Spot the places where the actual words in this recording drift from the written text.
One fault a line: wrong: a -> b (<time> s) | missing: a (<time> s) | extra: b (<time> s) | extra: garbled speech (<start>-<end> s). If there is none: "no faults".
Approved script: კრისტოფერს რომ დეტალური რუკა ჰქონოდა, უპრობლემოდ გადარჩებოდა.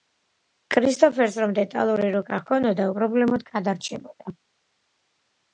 no faults